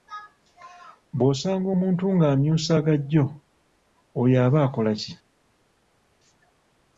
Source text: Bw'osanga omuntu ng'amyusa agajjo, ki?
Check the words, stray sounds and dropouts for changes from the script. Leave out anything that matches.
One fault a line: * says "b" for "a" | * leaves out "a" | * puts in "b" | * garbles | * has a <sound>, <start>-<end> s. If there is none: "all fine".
* puts in "oyo aba akola"